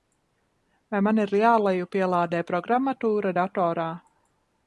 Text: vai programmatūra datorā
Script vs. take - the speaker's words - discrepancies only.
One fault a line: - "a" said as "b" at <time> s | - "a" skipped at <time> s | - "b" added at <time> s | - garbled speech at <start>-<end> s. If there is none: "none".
- "man ir jālejupielādē" added at 1.1 s